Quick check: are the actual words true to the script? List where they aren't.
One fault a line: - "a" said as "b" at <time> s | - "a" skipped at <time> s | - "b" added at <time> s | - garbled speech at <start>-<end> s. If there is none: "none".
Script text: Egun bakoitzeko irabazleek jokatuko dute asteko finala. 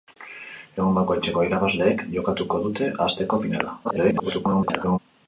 - garbled speech at 3.8-5.0 s